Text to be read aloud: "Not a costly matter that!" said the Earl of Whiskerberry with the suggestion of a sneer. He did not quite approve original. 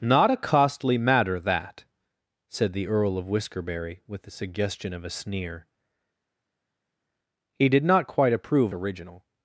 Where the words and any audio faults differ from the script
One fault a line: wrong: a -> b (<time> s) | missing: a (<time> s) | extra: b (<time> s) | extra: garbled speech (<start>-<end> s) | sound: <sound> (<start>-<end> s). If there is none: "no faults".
no faults